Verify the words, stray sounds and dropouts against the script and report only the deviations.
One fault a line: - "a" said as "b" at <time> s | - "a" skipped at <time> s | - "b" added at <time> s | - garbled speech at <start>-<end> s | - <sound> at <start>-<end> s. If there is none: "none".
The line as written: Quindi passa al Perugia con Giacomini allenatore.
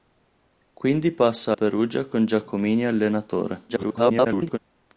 - "al" skipped at 1.6 s
- garbled speech at 3.7-4.6 s